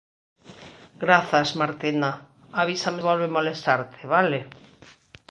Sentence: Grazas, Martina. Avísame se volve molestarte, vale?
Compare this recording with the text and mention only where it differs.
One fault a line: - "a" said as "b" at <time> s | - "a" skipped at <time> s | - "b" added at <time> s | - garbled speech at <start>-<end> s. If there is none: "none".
- "se" skipped at 3.0 s